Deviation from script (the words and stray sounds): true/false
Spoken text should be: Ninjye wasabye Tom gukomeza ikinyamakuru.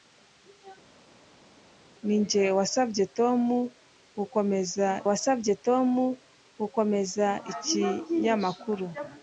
true